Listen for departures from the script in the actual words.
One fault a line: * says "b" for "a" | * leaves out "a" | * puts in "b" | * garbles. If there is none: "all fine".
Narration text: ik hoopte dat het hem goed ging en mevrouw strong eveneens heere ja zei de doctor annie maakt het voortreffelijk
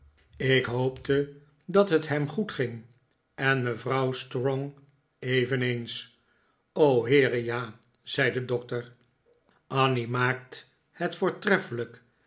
all fine